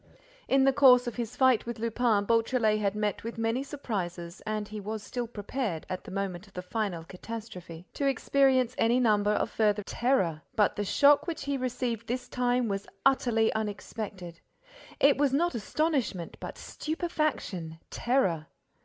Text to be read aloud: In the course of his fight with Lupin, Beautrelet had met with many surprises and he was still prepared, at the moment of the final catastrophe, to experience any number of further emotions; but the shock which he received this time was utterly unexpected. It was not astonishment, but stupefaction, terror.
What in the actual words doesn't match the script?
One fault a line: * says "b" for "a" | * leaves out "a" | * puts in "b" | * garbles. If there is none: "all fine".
* says "terror" for "emotions"